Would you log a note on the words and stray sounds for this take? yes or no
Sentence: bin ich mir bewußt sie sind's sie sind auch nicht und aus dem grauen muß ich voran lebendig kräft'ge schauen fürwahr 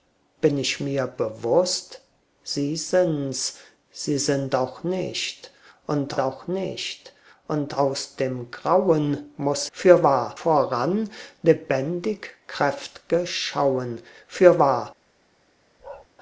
yes